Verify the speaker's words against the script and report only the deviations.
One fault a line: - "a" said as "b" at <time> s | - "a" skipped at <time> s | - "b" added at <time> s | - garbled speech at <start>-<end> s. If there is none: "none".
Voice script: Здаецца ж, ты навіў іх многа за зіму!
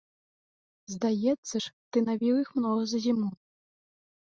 none